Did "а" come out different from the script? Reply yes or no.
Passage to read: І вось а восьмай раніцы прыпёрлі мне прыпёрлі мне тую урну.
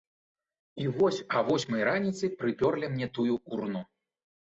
no